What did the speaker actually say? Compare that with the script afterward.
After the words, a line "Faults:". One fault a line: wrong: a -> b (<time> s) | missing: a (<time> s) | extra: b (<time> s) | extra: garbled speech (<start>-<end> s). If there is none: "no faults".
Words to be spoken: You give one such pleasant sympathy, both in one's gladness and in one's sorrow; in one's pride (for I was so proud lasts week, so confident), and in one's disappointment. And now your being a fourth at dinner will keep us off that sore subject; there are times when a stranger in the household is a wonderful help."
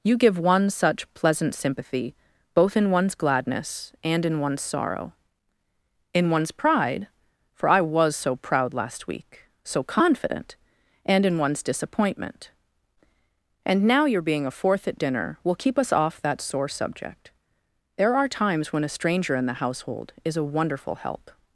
You give one such pleasant sympathy, both in one's gladness and in one's sorrow; in one's pride (for I was so proud last week, so confident), and in one's disappointment. And now your being a fourth at dinner will keep us off that sore subject; there are times when a stranger in the household is a wonderful help."
Faults:
wrong: lasts -> last (8.7 s)